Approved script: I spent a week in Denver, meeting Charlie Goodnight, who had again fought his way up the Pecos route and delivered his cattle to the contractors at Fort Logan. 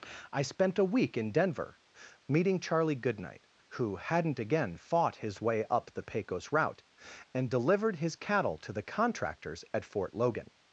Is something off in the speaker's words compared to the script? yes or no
yes